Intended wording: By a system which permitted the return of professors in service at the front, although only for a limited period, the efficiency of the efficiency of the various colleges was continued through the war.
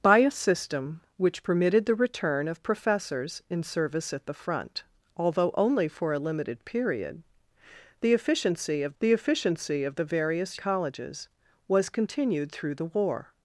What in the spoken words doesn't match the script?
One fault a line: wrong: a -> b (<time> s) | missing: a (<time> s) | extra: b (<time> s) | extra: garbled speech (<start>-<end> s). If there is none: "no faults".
no faults